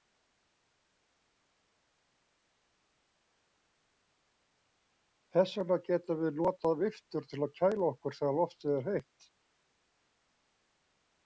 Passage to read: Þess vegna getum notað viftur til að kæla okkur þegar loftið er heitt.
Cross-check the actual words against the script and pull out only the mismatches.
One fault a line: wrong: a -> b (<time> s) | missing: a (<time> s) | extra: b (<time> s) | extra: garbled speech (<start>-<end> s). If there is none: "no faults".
extra: við (6.2 s)